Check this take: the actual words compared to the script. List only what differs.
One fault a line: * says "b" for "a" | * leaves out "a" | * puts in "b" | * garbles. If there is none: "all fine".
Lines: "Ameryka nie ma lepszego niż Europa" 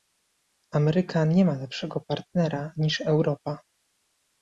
* puts in "partnera"